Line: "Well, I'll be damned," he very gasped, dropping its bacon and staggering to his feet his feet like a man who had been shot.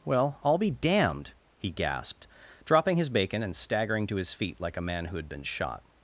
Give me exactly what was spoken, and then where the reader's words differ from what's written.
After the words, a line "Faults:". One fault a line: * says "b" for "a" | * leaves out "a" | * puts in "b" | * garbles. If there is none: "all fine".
"Well, I'll be damned," he gasped, dropping his bacon and staggering to his feet like a man who had been shot.
Faults:
* leaves out "very"
* says "his" for "its"
* leaves out "his feet"